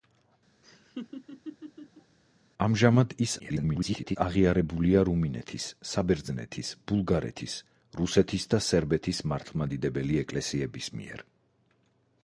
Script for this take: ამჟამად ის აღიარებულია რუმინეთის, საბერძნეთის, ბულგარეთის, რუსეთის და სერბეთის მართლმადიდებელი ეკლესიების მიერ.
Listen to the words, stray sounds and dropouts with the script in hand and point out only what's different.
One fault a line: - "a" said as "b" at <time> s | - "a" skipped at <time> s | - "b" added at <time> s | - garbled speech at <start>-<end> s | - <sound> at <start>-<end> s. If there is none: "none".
- laugh at 0.6-2.2 s
- garbled speech at 3.4-4.2 s